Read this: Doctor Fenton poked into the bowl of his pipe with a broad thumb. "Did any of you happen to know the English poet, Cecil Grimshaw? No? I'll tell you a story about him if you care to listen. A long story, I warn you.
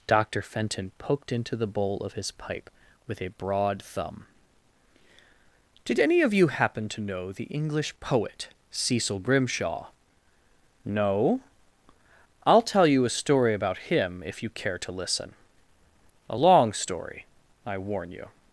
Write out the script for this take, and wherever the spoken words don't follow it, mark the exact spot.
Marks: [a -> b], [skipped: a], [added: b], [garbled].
Doctor Fenton poked into the bowl of his pipe with a broad thumb. "Did any of you happen to know the English poet, Cecil Grimshaw? No? I'll tell you a story about him if you care to listen. A long story, I warn you.